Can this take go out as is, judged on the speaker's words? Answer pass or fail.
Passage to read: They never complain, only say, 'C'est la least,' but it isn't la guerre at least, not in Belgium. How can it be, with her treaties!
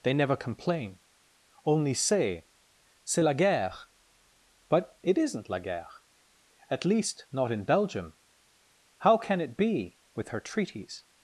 fail